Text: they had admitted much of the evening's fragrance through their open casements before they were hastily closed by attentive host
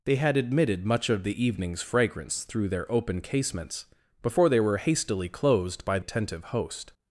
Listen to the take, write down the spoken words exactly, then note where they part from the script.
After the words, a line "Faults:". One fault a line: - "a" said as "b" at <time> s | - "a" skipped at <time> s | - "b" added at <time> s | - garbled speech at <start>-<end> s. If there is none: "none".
they had admitted much of the evening's fragrance through their open casements before they were hastily closed by attentive host
Faults:
none